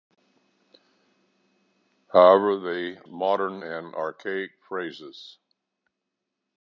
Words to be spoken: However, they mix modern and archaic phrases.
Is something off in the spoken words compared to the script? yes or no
yes